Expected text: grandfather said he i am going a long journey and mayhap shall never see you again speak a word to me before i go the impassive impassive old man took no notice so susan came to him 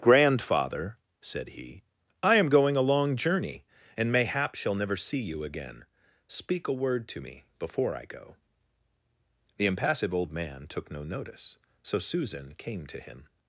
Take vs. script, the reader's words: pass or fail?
fail